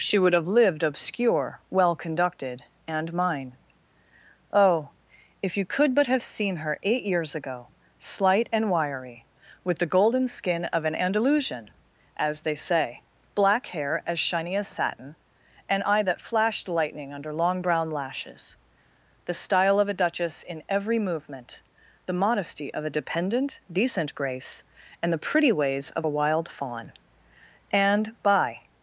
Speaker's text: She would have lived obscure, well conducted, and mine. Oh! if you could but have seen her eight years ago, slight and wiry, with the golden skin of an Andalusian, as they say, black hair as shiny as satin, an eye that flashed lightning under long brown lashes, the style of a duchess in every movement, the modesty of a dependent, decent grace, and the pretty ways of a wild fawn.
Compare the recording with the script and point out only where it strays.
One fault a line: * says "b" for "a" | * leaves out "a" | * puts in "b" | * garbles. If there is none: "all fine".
* puts in "And by"